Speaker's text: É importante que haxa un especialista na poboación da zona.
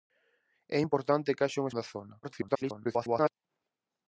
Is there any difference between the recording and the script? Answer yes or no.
yes